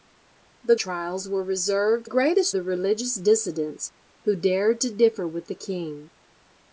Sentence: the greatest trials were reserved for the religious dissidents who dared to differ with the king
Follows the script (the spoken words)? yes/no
no